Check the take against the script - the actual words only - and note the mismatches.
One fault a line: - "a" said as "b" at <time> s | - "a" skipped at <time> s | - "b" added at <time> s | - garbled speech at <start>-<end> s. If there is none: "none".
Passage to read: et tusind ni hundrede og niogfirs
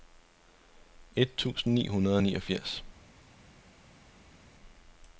none